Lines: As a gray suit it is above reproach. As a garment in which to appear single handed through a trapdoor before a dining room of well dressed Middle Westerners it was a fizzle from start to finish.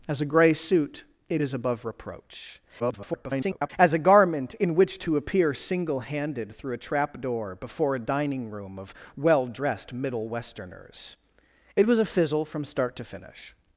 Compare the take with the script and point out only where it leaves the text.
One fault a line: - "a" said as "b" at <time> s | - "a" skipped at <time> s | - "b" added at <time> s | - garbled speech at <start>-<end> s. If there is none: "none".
- garbled speech at 2.8-3.7 s